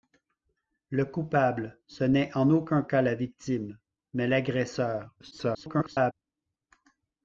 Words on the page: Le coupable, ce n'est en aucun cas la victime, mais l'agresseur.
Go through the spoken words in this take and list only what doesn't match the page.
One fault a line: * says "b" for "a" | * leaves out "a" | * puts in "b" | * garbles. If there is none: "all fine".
* garbles